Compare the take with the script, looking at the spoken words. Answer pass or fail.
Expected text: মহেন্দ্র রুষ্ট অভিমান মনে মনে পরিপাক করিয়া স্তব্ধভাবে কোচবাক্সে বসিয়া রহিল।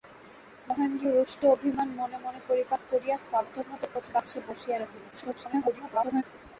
fail